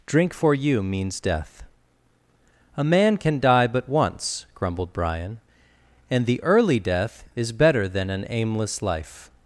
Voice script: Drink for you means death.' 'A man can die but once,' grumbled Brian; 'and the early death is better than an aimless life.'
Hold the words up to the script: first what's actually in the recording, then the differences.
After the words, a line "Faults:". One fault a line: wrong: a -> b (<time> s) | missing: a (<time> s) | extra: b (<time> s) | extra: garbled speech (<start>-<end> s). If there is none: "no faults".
Drink for you means death.' 'A man can die but once,' grumbled Brian; 'and the early death is better than an aimless life.'
Faults:
no faults